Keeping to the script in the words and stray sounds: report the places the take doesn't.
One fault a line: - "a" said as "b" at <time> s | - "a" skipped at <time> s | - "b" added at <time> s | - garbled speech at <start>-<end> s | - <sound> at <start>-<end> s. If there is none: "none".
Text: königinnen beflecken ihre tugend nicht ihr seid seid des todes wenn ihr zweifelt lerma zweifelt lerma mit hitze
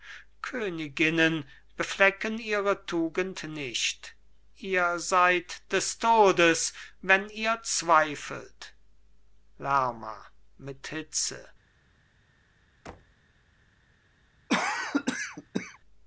- "seid" skipped at 5.6 s
- "zweifelt lerma" skipped at 10.2 s
- thud at 12.9-13.2 s
- cough at 14.5-15.8 s